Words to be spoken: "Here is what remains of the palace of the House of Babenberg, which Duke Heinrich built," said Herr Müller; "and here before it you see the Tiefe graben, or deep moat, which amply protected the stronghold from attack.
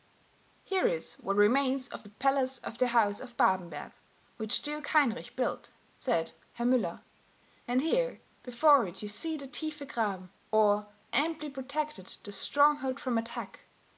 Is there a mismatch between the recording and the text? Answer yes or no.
yes